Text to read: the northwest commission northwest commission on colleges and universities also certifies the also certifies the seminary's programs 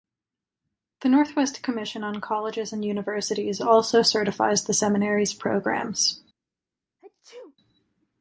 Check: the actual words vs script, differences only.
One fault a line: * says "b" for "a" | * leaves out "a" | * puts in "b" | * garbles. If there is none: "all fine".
* leaves out "northwest commission"
* leaves out "also certifies the"